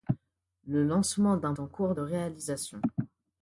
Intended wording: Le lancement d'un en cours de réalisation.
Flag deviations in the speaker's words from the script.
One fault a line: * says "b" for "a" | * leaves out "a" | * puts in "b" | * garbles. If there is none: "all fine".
all fine